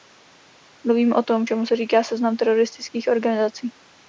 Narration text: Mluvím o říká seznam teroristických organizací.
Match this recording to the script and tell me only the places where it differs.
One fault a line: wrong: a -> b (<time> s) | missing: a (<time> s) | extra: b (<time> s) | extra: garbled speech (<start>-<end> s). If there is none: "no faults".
extra: tom čemu se (1.2 s)